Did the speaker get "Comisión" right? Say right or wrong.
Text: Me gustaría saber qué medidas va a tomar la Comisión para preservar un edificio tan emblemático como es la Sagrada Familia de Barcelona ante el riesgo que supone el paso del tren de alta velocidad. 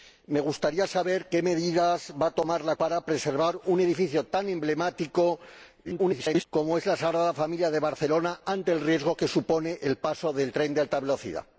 wrong